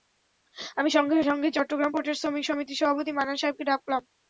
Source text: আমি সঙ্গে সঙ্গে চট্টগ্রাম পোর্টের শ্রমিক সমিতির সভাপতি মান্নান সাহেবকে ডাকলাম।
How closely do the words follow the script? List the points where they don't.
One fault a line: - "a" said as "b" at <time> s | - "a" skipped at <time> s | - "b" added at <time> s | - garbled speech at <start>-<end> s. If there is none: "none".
none